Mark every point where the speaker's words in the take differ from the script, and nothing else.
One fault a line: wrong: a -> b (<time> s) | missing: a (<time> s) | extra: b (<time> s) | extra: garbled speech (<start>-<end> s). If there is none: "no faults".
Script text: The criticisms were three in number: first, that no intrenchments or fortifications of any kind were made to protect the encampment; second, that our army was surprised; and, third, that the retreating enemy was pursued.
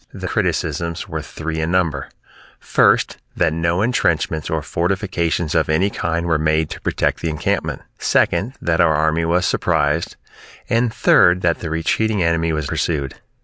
no faults